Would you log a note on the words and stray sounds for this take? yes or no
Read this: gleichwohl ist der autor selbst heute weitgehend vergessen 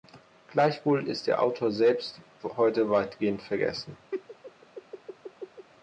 yes